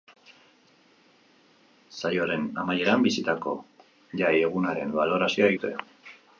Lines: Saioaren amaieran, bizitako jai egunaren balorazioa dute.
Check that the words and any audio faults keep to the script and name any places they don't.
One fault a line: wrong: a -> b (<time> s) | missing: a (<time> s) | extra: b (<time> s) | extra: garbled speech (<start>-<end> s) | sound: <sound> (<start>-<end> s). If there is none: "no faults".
no faults